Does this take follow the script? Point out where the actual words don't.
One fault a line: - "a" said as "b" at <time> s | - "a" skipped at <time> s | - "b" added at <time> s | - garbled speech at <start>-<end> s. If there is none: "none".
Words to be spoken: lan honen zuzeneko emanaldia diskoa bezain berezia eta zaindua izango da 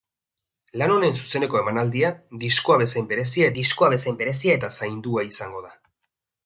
- "diskoa bezain berezia" added at 3.6 s